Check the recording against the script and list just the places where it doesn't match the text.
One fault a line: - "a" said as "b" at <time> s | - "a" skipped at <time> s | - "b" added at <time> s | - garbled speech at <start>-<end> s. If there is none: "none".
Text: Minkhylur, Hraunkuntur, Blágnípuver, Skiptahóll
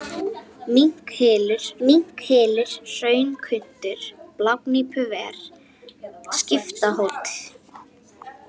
- "minkhylur" added at 1.9 s